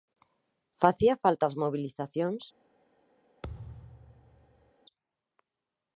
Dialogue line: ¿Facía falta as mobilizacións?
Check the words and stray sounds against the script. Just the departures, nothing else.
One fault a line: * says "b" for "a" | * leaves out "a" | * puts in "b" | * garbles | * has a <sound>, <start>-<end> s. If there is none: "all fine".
* has a thud, 3.4-4.7 s